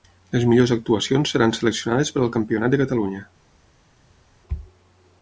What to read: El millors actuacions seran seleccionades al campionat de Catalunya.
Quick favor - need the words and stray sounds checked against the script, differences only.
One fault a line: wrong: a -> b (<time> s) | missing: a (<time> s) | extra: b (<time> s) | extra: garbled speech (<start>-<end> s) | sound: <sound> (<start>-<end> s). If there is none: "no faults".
wrong: El -> Les (0.3 s)
extra: per (2.1 s)